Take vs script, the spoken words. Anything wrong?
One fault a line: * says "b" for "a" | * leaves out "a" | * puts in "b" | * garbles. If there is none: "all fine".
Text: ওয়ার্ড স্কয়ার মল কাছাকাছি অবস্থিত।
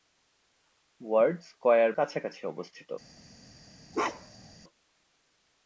* leaves out "মল"